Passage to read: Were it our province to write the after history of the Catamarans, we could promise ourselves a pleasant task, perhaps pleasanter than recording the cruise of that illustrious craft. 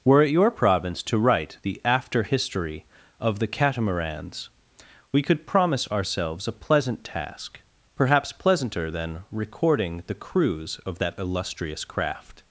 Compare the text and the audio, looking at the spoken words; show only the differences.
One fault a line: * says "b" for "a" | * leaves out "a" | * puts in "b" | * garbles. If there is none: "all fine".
* says "your" for "our"